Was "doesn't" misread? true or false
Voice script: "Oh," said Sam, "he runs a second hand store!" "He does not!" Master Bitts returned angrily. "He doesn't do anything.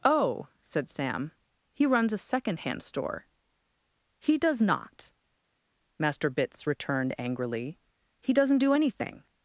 false